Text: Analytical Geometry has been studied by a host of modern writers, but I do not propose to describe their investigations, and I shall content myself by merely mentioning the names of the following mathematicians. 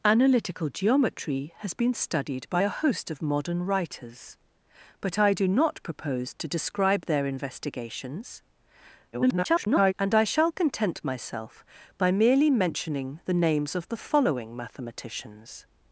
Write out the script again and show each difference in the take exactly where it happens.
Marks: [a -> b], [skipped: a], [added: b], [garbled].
Analytical Geometry has been studied by a host of modern writers, but I do not propose to describe their investigations, [garbled] and I shall content myself by merely mentioning the names of the following mathematicians.